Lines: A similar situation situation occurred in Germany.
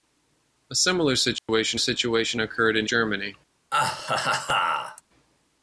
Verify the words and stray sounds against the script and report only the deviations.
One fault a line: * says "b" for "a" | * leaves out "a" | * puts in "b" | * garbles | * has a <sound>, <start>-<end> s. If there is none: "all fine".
* has a dropout, 1.4-1.5 s
* has a laugh, 3.7-5.0 s